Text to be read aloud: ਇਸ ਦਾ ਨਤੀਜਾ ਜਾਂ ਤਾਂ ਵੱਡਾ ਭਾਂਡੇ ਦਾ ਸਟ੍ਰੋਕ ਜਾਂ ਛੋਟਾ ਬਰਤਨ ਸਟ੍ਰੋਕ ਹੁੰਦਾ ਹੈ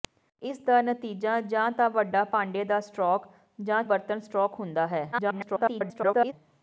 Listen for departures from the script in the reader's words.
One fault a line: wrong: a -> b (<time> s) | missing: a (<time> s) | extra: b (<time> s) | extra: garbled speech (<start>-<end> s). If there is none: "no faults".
missing: ਛੋਟਾ (3.8 s)
extra: garbled speech (5.1-6.3 s)